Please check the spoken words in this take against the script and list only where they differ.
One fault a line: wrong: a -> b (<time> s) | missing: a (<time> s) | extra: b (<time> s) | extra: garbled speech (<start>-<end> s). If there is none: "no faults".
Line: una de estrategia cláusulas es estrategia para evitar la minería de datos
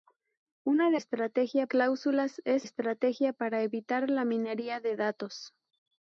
no faults